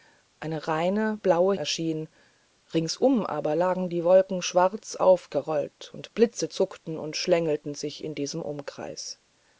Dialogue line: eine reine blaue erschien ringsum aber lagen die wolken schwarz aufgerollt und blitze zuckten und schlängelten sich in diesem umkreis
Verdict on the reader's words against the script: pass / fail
pass